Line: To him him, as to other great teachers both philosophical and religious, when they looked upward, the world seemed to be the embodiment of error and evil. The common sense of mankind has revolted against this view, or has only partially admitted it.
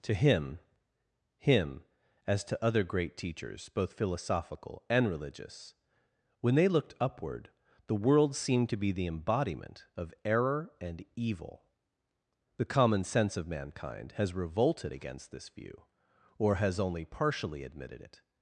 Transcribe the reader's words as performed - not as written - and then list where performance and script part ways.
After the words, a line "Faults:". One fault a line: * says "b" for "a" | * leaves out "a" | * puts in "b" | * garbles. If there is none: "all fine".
To him him, as to other great teachers both philosophical and religious, when they looked upward, the world seemed to be the embodiment of error and evil. The common sense of mankind has revolted against this view, or has only partially admitted it.
Faults:
all fine